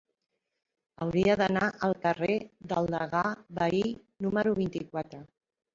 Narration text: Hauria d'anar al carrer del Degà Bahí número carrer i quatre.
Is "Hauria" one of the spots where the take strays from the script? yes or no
no